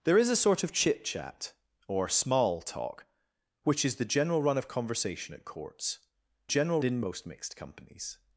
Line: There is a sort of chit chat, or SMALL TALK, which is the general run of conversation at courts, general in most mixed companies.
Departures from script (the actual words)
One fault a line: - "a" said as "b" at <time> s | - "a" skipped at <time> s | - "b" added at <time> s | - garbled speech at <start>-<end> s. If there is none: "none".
none